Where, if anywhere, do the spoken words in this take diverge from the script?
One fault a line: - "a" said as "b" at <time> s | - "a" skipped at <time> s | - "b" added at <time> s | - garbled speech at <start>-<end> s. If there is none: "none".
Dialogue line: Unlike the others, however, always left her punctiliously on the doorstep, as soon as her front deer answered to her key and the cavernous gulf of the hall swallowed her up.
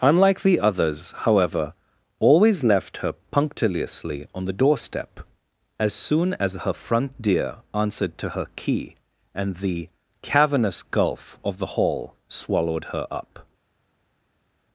none